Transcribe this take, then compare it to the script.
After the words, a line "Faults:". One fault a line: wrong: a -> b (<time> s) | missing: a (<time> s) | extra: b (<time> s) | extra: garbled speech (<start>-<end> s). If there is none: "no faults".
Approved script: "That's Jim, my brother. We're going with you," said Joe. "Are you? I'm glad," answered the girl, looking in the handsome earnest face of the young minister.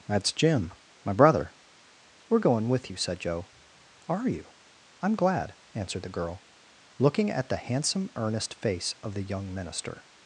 "That's Jim, my brother. We're going with you," said Joe. "Are you? I'm glad," answered the girl, looking at the handsome earnest face of the young minister.
Faults:
wrong: in -> at (7.3 s)